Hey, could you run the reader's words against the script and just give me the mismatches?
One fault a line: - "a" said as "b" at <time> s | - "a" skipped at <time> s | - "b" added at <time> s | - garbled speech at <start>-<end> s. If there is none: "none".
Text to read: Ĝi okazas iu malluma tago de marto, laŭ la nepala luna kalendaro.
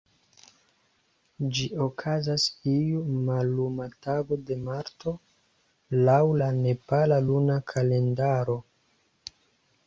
none